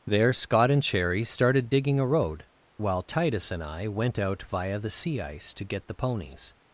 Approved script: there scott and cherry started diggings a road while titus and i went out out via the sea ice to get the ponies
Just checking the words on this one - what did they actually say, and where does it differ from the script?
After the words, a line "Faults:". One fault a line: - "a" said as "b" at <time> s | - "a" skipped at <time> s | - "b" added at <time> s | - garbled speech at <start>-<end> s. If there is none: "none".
there scott and cherry started digging a road while titus and i went out via the sea ice to get the ponies
Faults:
- "diggings" said as "digging" at 1.7 s
- "out" skipped at 4.4 s